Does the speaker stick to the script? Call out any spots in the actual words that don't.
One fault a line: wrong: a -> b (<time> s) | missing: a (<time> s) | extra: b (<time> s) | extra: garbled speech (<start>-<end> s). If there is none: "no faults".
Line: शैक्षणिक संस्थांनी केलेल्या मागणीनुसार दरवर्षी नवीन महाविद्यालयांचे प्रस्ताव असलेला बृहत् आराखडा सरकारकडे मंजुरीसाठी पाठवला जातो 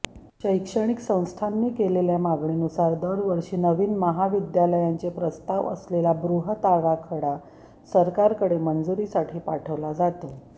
no faults